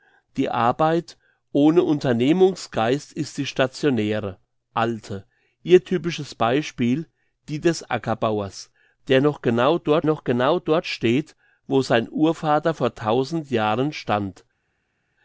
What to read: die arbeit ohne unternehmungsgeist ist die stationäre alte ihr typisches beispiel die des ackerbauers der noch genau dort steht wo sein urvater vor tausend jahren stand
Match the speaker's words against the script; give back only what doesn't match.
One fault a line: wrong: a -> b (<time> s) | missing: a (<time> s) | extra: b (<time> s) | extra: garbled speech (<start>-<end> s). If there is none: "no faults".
extra: noch genau dort (10.0 s)